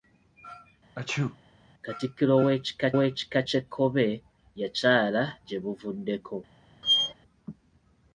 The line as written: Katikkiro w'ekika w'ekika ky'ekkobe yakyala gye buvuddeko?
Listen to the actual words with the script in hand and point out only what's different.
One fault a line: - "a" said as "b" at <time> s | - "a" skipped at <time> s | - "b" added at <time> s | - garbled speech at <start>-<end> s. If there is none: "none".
none